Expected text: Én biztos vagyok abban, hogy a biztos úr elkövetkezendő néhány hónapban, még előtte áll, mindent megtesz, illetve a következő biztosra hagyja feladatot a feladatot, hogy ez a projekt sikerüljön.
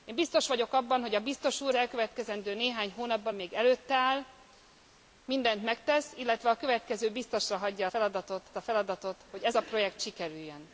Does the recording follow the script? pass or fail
pass